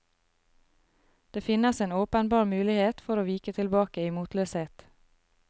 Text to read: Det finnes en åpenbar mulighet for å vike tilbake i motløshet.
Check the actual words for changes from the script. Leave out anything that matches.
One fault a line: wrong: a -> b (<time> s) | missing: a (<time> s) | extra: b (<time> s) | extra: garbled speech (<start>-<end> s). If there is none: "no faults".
no faults